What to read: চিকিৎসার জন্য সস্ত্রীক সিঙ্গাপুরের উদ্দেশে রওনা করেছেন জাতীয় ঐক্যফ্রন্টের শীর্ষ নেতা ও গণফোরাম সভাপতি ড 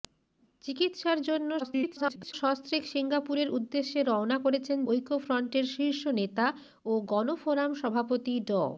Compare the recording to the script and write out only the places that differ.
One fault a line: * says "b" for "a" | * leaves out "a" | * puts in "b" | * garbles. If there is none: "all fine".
* garbles
* leaves out "জাতীয়"